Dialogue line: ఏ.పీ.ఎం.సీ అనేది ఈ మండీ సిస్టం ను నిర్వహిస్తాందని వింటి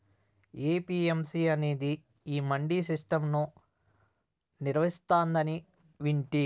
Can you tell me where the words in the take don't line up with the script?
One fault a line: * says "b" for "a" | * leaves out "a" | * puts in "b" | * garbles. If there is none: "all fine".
all fine